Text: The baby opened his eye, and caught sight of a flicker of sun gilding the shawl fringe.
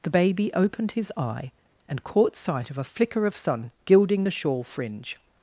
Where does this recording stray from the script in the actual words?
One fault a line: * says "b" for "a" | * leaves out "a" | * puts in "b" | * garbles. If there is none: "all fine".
all fine